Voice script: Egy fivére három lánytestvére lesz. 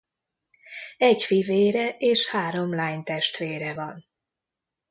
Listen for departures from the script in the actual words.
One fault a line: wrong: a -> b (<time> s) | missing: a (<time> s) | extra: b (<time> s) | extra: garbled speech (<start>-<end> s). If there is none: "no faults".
extra: és (1.9 s)
wrong: lesz -> van (3.7 s)